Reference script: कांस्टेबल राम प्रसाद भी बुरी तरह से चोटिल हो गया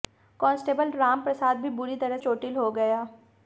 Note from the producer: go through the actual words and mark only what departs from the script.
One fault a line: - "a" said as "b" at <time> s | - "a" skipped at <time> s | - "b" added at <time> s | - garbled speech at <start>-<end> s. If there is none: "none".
- "से" skipped at 2.2 s